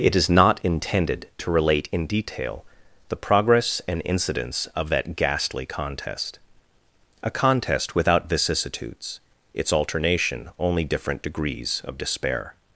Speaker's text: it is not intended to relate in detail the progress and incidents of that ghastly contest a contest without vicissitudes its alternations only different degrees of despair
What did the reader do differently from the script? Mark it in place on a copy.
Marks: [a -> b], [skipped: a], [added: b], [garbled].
it is not intended to relate in detail the progress and incidents of that ghastly contest a contest without vicissitudes its [alternations -> alternation] only different degrees of despair